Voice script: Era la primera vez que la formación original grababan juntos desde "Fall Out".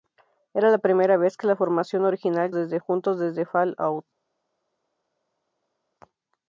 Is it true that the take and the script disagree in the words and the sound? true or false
true